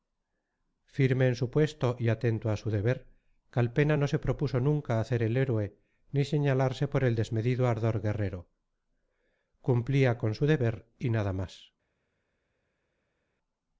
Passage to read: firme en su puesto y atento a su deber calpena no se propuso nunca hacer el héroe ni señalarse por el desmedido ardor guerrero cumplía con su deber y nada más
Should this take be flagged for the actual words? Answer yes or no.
no